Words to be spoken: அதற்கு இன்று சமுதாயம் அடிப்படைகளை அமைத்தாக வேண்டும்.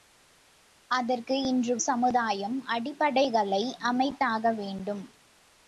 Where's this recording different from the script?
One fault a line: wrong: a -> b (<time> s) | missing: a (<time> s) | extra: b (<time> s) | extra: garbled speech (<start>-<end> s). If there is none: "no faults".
no faults